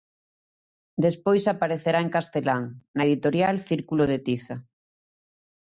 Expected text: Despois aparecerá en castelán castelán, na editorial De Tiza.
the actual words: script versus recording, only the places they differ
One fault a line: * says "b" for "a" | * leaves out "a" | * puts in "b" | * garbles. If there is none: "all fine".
* leaves out "castelán"
* puts in "Círculo"